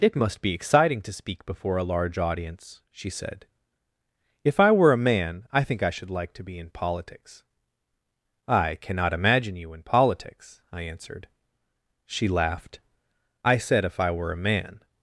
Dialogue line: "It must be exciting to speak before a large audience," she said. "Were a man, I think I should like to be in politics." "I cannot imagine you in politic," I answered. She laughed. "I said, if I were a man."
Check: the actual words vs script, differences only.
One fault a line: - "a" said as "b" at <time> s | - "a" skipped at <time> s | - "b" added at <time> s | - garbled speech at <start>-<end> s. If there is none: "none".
- "If I" added at 4.4 s
- "politic" said as "politics" at 9.8 s